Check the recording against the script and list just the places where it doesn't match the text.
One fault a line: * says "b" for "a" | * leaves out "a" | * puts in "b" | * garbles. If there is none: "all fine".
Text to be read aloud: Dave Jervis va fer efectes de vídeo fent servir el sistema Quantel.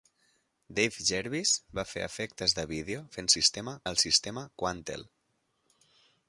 * says "sistema" for "servir"